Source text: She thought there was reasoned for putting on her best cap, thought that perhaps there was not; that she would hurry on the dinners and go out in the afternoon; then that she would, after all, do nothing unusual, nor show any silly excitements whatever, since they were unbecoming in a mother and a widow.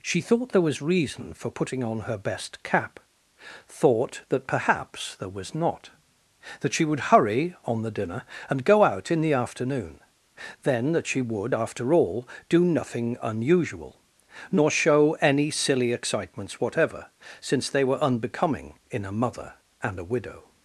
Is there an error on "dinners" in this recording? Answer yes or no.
yes